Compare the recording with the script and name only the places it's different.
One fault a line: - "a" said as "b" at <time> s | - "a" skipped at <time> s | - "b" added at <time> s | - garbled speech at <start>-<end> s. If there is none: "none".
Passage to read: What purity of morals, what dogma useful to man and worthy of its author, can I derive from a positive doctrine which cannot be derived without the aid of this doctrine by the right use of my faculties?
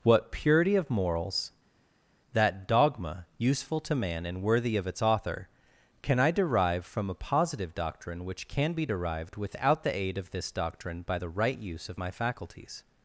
- "what" said as "that" at 2.3 s
- "cannot" said as "can" at 8.5 s